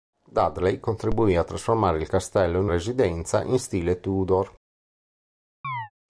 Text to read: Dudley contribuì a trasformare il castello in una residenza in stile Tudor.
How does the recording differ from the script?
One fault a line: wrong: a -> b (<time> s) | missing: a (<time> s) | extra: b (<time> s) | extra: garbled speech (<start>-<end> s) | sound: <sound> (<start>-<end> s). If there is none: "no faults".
missing: una (2.7 s)
sound: chirp (5.6-5.9 s)